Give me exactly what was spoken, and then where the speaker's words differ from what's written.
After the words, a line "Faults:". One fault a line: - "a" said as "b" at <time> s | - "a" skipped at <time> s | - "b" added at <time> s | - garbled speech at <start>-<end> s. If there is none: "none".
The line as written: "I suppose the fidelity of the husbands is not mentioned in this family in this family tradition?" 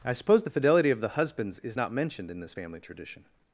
"I suppose the fidelity of the husbands is not mentioned in this family tradition?"
Faults:
- "in this family" skipped at 2.8 s